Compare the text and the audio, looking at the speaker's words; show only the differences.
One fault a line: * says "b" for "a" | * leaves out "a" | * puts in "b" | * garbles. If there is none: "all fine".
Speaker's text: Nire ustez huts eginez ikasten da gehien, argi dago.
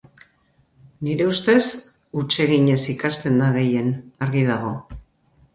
all fine